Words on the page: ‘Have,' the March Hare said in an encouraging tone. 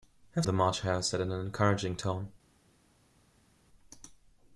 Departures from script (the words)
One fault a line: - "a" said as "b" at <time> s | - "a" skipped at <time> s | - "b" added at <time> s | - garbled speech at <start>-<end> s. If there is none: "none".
none